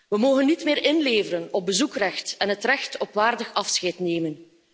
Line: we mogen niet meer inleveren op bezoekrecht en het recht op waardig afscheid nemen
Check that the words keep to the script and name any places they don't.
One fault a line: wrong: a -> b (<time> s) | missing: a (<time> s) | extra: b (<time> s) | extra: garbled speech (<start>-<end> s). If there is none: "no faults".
no faults